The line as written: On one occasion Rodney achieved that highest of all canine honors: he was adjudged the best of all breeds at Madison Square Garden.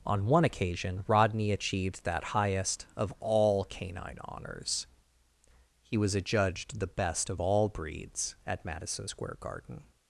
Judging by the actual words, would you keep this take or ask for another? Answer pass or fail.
pass